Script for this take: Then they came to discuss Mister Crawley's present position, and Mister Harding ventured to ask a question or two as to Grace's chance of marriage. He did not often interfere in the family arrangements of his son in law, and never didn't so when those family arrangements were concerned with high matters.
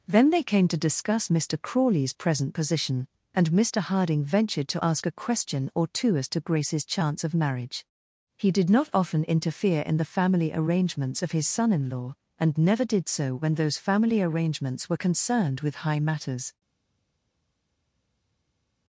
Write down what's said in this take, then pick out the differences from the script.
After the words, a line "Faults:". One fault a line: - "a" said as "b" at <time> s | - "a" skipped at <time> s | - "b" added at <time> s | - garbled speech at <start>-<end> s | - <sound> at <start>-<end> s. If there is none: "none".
Then they came to discuss Mister Crawley's present position, and Mister Harding ventured to ask a question or two as to Grace's chance of marriage. He did not often interfere in the family arrangements of his son in law, and never did so when those family arrangements were concerned with high matters.
Faults:
- "didn't" said as "did" at 12.8 s